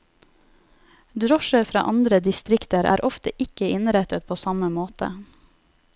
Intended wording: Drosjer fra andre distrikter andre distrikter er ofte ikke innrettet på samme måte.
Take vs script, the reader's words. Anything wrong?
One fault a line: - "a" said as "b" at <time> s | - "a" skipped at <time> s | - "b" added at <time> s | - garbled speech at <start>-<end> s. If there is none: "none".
- "andre distrikter" skipped at 2.9 s